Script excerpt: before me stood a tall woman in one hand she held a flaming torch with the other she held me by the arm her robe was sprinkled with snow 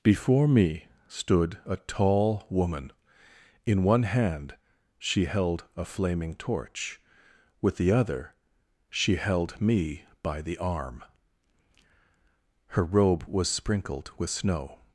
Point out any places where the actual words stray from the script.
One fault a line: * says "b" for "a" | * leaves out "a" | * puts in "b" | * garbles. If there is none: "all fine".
all fine